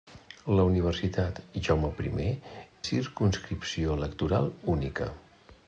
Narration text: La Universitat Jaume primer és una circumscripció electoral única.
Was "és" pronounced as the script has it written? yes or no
no